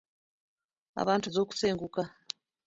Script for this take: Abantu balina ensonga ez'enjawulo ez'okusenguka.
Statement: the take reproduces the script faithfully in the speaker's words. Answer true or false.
false